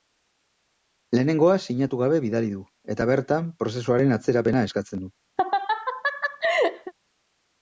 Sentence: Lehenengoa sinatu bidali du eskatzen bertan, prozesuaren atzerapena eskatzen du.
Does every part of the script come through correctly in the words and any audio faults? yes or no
no